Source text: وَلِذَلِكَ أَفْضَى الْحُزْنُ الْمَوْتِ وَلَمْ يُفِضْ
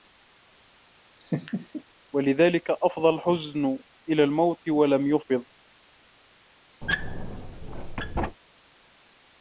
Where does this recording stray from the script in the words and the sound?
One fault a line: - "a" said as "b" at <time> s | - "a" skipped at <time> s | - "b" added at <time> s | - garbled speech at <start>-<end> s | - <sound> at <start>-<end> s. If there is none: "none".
- laugh at 1.2-1.8 s
- "إلَى" added at 4.1 s
- squeak at 6.8-8.4 s